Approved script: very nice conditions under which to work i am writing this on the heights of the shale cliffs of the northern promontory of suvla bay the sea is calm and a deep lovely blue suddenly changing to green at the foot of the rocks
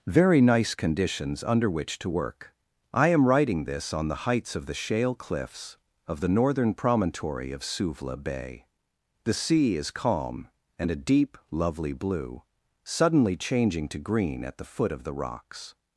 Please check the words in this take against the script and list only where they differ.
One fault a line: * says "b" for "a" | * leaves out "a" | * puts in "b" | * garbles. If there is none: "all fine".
all fine